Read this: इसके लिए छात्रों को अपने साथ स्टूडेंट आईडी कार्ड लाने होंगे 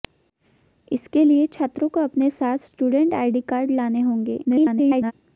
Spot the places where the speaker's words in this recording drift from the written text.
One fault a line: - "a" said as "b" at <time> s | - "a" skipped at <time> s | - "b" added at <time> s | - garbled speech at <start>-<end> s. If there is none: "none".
- garbled speech at 4.4-5.1 s